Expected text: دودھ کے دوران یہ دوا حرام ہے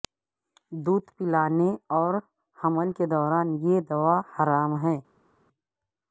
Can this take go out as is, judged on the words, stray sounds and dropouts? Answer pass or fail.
fail